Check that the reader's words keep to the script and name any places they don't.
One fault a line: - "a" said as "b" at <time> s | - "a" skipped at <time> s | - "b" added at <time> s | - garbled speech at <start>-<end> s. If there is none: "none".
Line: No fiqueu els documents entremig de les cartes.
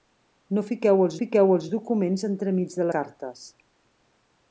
- "fiqueu els" added at 1.2 s
- "les" skipped at 2.9 s